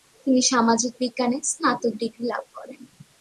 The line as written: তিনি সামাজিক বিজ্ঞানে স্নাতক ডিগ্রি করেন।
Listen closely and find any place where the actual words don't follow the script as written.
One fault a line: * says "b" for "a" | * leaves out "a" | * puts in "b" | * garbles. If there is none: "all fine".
* puts in "লাভ"